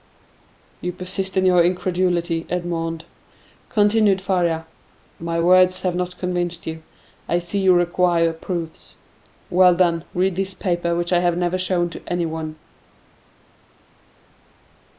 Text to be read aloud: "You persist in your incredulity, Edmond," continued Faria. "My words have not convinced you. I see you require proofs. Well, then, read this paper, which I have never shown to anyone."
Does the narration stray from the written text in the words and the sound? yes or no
no